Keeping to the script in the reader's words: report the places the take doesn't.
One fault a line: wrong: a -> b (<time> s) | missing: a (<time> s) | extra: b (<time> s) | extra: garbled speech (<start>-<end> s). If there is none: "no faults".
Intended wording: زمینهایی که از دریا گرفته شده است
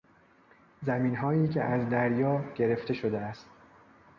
no faults